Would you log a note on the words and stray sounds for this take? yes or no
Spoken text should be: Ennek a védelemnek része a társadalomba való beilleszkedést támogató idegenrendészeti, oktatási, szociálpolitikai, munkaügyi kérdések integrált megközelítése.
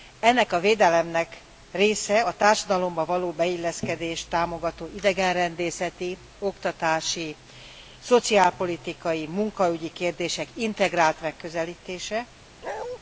yes